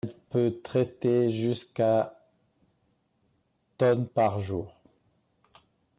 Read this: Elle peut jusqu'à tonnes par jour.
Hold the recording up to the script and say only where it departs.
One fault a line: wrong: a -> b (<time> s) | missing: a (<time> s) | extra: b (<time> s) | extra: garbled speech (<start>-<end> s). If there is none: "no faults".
extra: traiter (0.6 s)